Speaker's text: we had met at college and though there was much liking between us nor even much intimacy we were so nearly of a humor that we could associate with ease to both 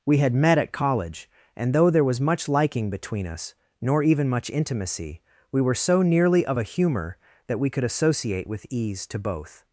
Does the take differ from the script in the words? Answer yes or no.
no